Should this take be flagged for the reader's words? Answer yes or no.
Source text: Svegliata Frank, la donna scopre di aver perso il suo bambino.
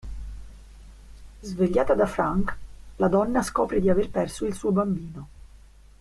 yes